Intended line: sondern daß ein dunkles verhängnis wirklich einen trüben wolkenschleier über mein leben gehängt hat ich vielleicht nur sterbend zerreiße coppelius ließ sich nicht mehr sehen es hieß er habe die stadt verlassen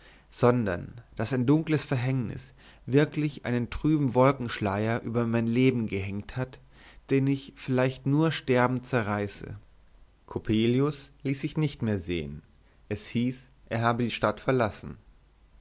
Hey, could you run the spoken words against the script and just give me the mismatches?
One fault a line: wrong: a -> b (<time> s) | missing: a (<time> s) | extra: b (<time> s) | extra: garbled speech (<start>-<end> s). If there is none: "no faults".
extra: den (7.1 s)